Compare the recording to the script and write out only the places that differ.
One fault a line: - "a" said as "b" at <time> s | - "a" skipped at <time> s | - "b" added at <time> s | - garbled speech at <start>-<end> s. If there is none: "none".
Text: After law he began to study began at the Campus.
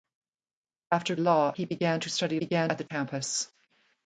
none